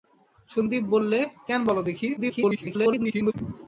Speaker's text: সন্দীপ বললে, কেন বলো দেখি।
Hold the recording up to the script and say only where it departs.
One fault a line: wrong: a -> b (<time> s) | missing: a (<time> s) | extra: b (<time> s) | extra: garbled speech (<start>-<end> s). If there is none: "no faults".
extra: garbled speech (2.2-3.3 s)